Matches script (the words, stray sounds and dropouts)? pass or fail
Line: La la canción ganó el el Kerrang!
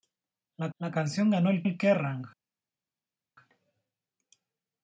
pass